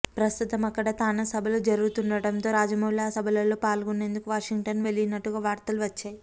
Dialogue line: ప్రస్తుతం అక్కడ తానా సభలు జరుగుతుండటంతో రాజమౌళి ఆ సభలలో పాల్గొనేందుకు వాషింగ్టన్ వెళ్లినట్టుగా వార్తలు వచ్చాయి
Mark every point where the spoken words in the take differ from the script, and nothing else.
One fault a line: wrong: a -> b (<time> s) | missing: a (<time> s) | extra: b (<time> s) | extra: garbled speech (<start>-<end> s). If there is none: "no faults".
no faults